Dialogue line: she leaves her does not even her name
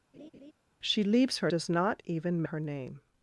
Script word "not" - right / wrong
right